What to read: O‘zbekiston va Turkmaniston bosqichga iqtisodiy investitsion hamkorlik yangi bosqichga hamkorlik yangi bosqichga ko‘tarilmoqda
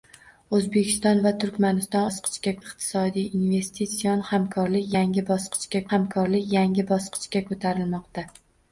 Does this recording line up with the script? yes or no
yes